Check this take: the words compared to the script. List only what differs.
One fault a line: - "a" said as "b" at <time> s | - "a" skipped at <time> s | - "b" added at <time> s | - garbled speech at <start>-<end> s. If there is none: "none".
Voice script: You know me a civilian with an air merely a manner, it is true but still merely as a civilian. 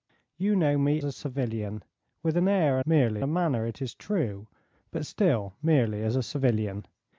none